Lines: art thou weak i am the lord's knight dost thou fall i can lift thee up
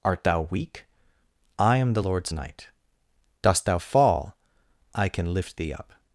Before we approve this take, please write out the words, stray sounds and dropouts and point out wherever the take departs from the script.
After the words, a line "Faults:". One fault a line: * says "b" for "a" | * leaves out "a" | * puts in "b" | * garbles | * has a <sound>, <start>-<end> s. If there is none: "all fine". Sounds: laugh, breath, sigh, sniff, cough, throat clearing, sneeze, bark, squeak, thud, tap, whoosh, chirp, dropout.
art thou weak i am the lord's knight dost thou fall i can lift thee up
Faults:
all fine